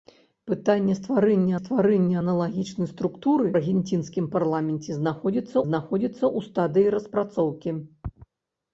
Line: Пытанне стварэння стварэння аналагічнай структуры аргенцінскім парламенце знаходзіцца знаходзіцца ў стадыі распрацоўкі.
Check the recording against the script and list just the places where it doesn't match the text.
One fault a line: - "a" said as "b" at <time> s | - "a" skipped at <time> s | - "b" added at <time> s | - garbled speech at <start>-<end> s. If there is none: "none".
none